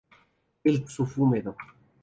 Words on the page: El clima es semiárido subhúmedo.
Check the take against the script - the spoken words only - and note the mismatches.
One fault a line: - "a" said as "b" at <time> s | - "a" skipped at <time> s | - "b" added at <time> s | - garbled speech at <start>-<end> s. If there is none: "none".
- "clima es semiárido" skipped at 0.8 s